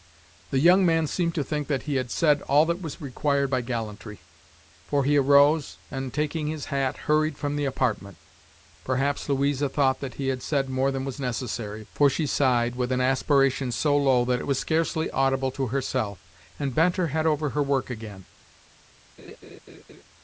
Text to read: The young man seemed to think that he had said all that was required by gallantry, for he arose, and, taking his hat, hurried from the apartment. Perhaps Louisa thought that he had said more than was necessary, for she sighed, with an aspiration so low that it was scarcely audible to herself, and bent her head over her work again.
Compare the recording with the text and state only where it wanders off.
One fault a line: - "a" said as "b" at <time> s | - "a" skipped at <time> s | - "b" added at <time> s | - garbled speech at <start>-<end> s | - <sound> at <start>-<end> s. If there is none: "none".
- laugh at 19.2-20.0 s